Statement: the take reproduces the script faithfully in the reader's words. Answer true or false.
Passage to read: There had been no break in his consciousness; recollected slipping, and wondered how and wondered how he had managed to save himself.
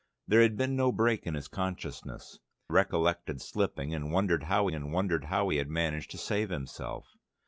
true